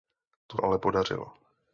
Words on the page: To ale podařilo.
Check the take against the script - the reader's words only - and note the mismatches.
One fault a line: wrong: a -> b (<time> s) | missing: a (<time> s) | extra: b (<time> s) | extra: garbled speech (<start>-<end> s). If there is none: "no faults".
no faults